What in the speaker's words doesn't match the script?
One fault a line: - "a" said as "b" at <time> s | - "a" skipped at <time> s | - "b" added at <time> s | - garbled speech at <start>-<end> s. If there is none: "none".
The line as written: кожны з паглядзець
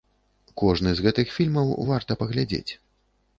- "гэтых фільмаў варта" added at 1.1 s